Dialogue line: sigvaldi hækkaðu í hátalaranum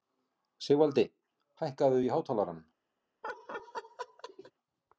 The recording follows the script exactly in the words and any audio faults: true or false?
false